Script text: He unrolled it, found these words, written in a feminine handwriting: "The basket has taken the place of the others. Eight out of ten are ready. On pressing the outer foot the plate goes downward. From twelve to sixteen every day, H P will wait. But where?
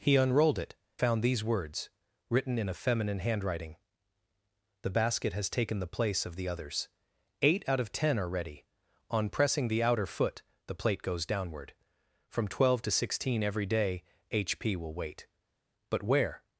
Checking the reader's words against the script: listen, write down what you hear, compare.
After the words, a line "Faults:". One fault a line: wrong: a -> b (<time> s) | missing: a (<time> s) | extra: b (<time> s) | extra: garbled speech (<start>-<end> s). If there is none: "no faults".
He unrolled it, found these words, written in a feminine handwriting: "The basket has taken the place of the others. Eight out of ten are ready. On pressing the outer foot the plate goes downward. From twelve to sixteen every day, H P will wait. But where?
Faults:
no faults